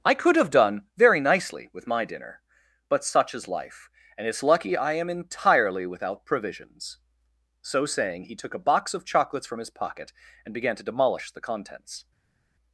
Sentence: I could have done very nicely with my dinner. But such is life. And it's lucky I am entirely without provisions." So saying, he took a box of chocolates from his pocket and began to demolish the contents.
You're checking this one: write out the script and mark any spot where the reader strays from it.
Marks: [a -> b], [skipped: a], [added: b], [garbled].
I could have done very nicely with my dinner. But such is life. And it's lucky I am entirely without provisions." So saying, he took a box of chocolates from his pocket and began to demolish the contents.